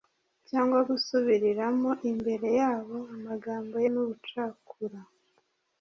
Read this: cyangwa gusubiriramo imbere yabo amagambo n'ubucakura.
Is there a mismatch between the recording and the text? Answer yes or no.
no